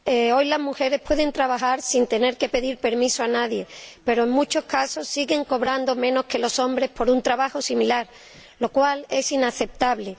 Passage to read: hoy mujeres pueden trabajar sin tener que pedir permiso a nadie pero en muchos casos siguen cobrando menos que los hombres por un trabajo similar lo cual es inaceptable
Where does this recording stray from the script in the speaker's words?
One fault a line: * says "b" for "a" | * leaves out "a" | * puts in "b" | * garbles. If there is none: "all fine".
* puts in "las"